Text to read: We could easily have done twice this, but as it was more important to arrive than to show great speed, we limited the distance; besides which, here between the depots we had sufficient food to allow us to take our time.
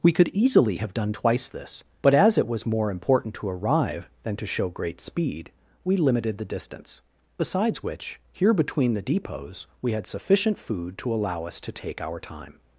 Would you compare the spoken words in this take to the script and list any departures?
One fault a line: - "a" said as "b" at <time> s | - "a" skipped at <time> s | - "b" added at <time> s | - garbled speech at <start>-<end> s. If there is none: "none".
none